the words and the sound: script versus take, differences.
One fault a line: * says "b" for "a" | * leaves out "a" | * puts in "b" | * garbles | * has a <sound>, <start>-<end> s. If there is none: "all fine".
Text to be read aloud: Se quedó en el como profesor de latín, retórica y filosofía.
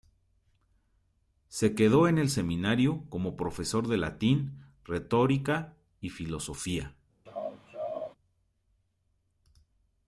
* puts in "seminario"
* has a laugh, 7.3-8.2 s